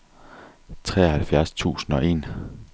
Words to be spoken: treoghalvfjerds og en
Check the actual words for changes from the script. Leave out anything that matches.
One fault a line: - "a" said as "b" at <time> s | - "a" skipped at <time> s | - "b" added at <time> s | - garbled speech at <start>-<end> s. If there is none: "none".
- "tusind" added at 1.5 s